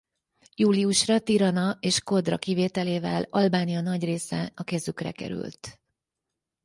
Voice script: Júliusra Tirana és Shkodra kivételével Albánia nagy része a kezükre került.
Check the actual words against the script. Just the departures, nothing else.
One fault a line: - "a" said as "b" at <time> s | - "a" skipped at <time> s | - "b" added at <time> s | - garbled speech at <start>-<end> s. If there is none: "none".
none